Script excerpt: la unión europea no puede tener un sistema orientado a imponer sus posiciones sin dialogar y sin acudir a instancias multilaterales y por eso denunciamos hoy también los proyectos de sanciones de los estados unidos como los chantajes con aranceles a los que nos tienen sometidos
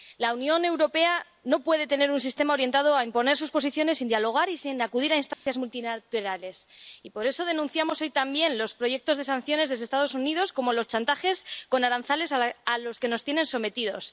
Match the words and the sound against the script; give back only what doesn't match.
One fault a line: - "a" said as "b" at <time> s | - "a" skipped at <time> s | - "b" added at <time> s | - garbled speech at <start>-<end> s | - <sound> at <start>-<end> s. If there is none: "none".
- dropout at 5.3-5.5 s